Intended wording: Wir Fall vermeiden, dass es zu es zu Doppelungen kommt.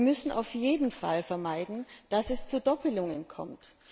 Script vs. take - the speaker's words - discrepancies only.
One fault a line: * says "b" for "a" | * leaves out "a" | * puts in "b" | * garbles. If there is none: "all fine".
* puts in "müssen auf jeden"
* leaves out "es zu"